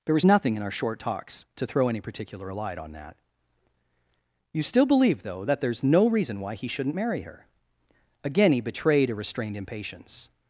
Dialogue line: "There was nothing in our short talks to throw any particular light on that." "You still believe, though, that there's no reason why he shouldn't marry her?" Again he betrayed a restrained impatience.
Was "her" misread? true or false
false